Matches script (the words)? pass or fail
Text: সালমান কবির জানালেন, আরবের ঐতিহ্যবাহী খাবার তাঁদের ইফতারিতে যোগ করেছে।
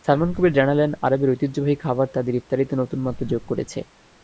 fail